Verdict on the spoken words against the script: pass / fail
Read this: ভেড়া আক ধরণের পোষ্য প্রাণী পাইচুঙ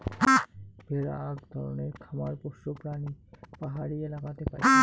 fail